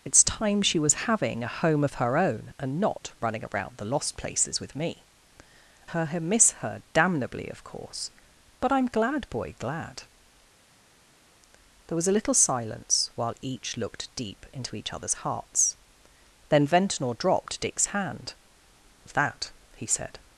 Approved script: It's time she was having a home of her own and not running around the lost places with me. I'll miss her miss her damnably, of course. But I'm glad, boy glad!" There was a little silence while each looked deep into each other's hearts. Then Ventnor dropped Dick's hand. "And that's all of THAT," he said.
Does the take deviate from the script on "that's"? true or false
true